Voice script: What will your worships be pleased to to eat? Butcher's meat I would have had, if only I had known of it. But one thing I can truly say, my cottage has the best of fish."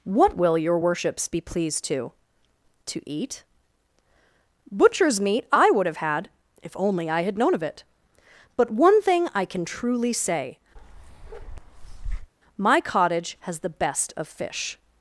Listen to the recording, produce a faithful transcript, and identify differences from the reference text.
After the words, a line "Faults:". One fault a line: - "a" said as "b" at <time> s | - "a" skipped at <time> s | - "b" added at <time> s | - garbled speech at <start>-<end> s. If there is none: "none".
What will your worships be pleased to to eat? Butcher's meat I would have had, if only I had known of it. But one thing I can truly say, my cottage has the best of fish."
Faults:
none